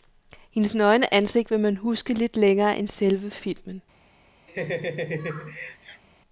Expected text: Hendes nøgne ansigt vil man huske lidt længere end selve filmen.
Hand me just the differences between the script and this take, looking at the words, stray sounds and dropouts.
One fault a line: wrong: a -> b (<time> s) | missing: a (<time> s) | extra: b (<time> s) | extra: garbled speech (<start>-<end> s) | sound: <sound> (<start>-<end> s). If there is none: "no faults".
sound: laugh (4.5-6.0 s)